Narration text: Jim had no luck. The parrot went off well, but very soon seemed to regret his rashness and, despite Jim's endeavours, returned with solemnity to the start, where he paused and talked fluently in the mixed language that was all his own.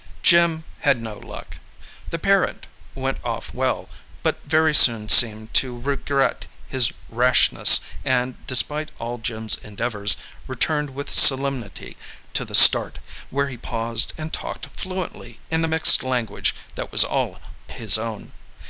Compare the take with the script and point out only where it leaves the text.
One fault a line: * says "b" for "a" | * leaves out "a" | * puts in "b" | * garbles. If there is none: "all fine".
* puts in "all"